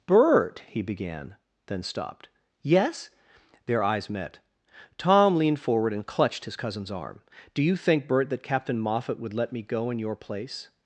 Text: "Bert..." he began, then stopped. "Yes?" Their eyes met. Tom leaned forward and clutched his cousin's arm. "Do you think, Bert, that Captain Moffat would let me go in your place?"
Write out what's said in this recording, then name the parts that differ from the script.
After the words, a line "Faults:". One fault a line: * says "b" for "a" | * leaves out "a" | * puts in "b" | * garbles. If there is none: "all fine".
"Bert..." he began, then stopped. "Yes?" Their eyes met. Tom leaned forward and clutched his cousin's arm. "Do you think, Bert, that Captain Moffat would let me go in your place?"
Faults:
all fine